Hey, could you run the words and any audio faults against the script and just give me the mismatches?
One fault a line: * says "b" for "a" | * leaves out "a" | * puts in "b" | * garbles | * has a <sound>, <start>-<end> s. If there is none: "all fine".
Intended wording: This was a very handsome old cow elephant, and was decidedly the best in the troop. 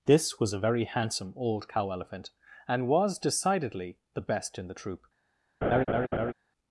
* has a laugh, 5.6-6.3 s